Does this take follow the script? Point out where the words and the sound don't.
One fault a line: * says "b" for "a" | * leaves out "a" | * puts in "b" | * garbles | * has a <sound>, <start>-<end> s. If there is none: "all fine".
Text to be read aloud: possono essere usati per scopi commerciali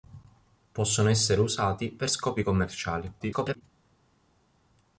* garbles